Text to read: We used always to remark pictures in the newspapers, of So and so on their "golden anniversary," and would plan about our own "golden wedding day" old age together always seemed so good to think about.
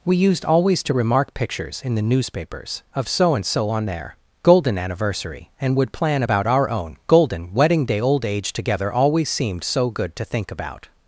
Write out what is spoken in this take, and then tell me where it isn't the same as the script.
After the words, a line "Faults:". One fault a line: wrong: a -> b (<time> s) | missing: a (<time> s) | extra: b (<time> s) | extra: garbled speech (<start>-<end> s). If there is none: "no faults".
We used always to remark pictures in the newspapers, of So and so on their "golden anniversary," and would plan about our own "golden wedding day" old age together always seemed so good to think about.
Faults:
no faults